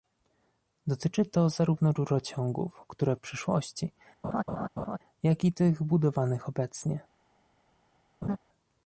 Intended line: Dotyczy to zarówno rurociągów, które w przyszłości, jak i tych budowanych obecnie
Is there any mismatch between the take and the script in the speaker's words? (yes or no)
no